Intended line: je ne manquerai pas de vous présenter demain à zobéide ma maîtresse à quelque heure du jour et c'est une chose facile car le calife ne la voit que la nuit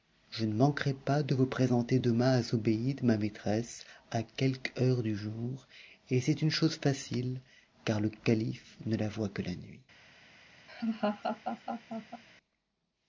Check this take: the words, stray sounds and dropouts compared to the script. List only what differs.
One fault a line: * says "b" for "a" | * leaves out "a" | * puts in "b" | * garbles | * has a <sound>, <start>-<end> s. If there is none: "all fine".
* has a laugh, 10.7-12.2 s